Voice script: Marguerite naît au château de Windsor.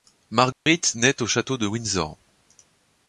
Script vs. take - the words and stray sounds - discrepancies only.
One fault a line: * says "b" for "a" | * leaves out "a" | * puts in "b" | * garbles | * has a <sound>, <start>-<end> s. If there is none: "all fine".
* has a dropout, 0.5-0.7 s